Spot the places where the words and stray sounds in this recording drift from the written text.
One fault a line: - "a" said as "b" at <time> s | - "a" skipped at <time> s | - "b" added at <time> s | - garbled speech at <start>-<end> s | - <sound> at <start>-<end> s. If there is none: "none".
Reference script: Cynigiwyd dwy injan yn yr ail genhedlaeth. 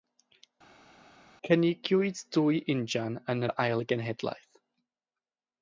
none